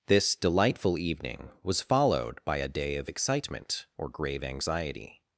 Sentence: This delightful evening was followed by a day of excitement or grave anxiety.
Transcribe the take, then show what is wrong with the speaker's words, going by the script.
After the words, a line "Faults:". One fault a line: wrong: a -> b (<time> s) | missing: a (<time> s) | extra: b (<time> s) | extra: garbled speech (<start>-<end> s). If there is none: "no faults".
This delightful evening was followed by a day of excitement or grave anxiety.
Faults:
no faults